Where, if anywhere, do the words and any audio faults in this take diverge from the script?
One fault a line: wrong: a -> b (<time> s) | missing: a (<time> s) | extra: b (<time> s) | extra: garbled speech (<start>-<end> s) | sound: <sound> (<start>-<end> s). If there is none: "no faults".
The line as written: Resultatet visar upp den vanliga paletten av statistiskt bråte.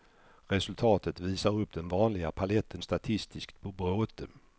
missing: av (2.8 s)